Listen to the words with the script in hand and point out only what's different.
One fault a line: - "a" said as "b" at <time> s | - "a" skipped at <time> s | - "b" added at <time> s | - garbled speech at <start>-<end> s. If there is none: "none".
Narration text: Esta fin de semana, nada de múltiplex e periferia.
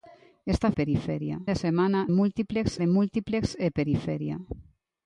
- "fin" said as "periferia" at 0.7 s
- "nada" said as "múltiplex" at 2.1 s